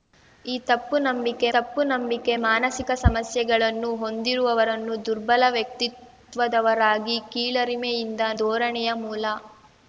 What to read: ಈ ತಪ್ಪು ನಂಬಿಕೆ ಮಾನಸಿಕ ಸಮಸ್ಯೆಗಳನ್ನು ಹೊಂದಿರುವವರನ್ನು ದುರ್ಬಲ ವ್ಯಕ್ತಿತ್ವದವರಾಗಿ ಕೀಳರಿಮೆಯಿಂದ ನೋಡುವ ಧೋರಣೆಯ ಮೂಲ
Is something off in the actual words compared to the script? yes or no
yes